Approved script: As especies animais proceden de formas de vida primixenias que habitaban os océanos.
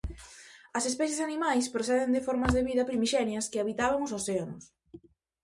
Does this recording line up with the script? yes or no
yes